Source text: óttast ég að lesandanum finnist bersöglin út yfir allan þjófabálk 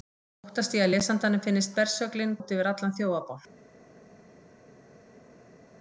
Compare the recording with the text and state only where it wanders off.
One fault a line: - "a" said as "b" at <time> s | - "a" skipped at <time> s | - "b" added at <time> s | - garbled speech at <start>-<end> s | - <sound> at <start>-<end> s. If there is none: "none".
none